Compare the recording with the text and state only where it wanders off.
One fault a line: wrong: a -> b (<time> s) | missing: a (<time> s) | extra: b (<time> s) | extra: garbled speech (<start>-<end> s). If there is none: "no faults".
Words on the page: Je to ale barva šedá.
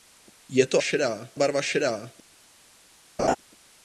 wrong: ale -> šedá (0.8 s)